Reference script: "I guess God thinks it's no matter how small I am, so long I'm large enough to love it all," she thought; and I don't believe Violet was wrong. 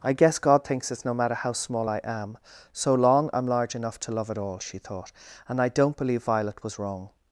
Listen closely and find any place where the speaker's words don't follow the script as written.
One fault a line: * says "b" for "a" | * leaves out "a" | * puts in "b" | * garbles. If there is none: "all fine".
all fine